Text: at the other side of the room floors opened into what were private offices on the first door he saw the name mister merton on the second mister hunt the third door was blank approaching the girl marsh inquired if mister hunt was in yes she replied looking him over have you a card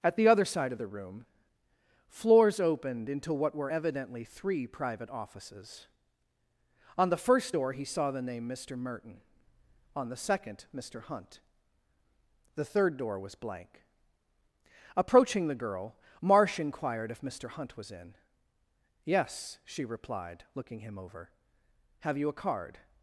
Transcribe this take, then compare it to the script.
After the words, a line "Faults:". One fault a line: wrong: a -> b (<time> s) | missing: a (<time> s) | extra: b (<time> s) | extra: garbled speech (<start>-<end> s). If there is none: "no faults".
at the other side of the room floors opened into what were evidently three private offices on the first door he saw the name mister merton on the second mister hunt the third door was blank approaching the girl marsh inquired if mister hunt was in yes she replied looking him over have you a card
Faults:
extra: evidently three (3.7 s)